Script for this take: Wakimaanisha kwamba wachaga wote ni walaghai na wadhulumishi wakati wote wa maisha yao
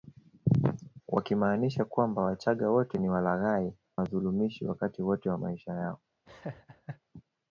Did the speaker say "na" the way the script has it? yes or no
no